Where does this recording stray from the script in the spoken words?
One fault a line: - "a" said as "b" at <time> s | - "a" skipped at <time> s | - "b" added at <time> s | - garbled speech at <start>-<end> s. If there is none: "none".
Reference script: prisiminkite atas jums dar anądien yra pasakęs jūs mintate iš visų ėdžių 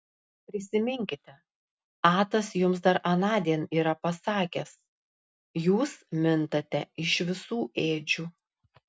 none